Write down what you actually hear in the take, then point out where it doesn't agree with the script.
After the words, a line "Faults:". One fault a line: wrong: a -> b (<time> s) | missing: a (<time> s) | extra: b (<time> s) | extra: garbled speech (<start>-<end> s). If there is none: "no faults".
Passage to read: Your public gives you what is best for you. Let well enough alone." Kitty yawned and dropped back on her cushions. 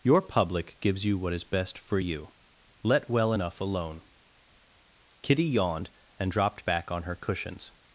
Your public gives you what is best for you. Let well enough alone." Kitty yawned and dropped back on her cushions.
Faults:
no faults